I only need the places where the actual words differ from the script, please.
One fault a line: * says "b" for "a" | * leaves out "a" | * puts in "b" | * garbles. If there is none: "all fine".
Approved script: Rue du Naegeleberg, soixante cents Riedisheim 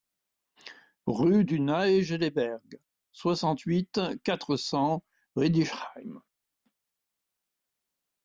* puts in "huit quatre"